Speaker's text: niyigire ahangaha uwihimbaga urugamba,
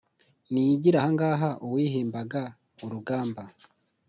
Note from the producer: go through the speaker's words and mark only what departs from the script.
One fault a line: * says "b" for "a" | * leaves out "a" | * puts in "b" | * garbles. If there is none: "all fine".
all fine